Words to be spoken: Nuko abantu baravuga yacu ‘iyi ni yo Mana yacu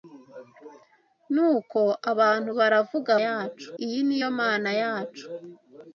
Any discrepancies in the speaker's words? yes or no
no